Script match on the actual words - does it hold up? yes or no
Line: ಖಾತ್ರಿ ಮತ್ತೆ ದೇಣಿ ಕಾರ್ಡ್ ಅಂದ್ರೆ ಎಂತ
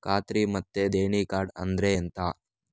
yes